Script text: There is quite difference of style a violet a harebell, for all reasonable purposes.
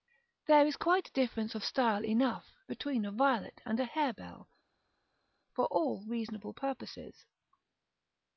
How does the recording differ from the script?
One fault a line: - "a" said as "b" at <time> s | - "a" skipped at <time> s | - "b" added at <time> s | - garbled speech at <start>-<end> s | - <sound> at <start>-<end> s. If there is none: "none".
- "enough between" added at 2.0 s
- "and" added at 3.6 s